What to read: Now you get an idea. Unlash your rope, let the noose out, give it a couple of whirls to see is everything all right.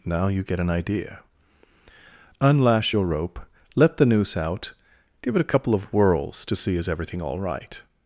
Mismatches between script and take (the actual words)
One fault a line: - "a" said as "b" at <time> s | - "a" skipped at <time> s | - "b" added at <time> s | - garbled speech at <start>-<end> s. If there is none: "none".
none